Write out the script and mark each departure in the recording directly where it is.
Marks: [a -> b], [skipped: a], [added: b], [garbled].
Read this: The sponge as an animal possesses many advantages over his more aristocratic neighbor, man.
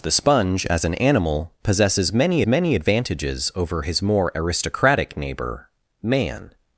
The sponge as an animal possesses many [added: many] advantages over his more aristocratic neighbor, man.